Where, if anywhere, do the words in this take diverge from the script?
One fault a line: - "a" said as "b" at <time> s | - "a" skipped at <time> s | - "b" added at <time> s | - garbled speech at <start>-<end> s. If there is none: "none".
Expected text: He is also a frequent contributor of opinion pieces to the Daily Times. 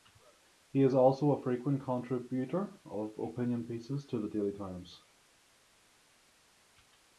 none